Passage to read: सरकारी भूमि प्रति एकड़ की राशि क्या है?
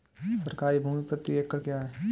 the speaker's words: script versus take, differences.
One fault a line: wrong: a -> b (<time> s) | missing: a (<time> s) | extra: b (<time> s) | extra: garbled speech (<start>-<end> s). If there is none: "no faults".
missing: की राशि (1.6 s)